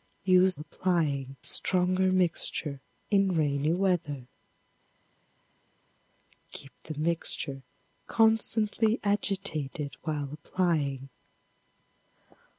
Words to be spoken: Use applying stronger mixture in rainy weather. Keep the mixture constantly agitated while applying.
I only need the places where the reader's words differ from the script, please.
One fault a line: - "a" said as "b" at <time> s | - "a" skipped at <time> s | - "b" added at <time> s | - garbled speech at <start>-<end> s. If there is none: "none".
none